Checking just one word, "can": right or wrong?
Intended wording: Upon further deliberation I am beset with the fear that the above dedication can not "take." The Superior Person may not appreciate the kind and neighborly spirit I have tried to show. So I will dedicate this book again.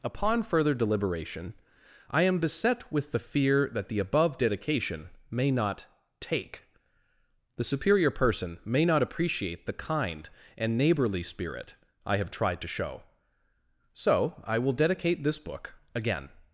wrong